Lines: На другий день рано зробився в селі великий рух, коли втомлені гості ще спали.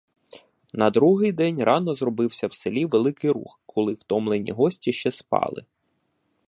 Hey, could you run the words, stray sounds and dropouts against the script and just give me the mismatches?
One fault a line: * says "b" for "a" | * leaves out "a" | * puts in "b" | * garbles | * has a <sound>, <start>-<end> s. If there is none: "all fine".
all fine